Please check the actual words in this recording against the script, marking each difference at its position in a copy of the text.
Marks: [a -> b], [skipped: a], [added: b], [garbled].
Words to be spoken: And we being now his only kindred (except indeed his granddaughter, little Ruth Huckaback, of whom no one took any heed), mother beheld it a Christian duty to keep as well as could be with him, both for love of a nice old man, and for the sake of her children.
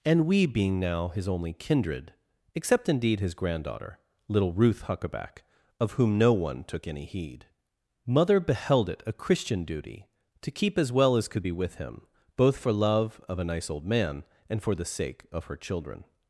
And we being now his only kindred (except indeed his granddaughter, little Ruth Huckaback, of whom no one took any heed), mother beheld it a Christian duty to keep as well as could be with him, both for love of a nice old man, and for the sake of her children.